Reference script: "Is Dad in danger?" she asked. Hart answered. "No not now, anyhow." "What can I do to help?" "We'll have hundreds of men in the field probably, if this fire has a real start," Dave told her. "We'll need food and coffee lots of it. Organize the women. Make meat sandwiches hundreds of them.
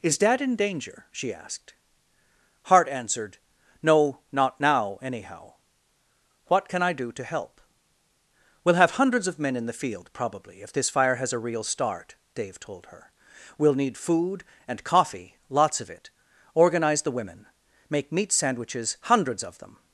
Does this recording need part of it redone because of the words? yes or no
no